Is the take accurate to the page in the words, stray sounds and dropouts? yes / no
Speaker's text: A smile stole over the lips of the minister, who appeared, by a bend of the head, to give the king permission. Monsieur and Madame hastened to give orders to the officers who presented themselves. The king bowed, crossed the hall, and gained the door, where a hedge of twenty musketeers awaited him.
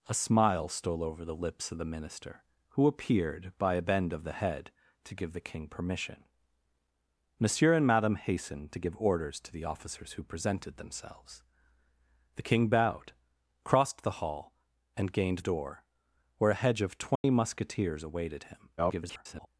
no